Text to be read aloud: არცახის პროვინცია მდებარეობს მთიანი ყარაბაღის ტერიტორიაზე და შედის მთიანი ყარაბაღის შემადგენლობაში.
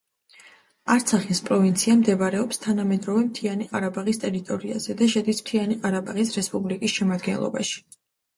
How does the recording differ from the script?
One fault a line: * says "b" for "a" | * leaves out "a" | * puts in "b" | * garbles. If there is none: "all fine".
* puts in "თანამედროვე"
* puts in "რესპუბლიკის"